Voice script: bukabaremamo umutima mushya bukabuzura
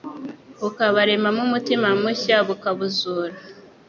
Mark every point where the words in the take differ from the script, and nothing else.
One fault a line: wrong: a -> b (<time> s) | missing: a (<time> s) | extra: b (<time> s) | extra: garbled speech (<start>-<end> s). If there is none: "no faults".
no faults